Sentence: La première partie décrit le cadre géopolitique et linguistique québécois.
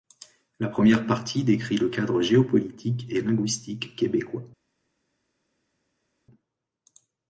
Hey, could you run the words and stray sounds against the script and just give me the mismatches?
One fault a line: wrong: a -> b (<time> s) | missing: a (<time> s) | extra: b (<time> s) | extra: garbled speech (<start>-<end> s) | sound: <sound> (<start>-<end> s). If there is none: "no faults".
no faults